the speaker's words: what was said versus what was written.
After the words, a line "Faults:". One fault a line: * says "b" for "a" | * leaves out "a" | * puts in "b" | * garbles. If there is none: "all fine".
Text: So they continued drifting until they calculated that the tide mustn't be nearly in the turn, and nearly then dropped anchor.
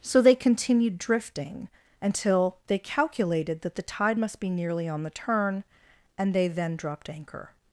So they continued drifting until they calculated that the tide must be nearly on the turn, and they then dropped anchor.
Faults:
* says "must" for "mustn't"
* says "on" for "in"
* says "they" for "nearly"